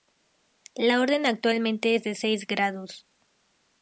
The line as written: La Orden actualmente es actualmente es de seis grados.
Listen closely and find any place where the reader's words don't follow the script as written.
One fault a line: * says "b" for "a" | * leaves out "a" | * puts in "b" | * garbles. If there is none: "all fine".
* leaves out "actualmente es"